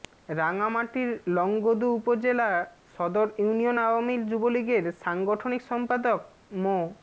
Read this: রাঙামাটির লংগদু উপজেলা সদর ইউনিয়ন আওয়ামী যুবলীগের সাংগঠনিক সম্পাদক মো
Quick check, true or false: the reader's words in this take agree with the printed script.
true